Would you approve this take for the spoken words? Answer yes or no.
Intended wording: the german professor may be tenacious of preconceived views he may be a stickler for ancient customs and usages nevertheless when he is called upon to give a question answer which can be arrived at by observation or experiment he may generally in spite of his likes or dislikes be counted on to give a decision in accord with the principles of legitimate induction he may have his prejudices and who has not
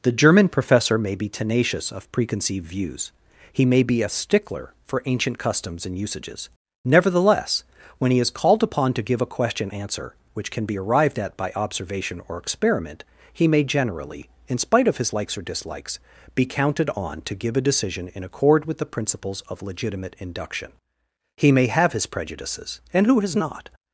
yes